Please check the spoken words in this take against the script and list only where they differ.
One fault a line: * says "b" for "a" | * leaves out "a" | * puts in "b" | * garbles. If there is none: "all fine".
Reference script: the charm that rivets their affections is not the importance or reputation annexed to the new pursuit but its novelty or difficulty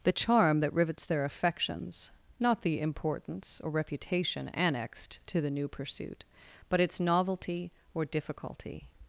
* leaves out "is"